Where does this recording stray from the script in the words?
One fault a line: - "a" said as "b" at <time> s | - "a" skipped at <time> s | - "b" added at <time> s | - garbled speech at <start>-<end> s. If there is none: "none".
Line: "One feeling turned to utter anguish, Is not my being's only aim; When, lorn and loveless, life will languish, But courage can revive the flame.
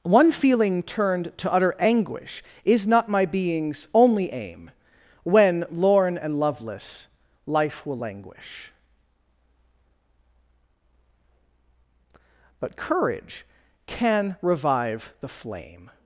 none